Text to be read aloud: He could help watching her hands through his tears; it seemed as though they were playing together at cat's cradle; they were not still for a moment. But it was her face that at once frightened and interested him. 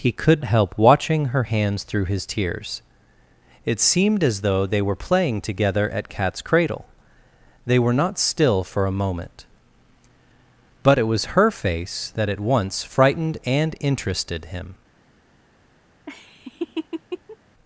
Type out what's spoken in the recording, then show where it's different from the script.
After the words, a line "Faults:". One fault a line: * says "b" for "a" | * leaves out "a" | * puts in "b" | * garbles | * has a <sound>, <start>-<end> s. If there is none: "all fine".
He could help watching her hands through his tears; it seemed as though they were playing together at cat's cradle; they were not still for a moment. But it was her face that at once frightened and interested him.
Faults:
* has a laugh, 16.1-17.4 s